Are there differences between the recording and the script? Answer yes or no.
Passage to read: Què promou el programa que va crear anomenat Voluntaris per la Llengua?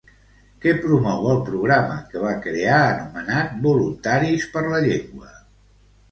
no